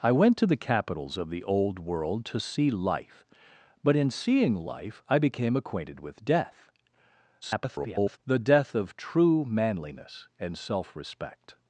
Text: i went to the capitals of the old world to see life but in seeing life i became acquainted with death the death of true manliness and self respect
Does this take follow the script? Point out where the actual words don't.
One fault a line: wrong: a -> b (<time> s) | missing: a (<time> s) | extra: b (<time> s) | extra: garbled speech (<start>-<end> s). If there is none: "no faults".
extra: garbled speech (7.4-8.2 s)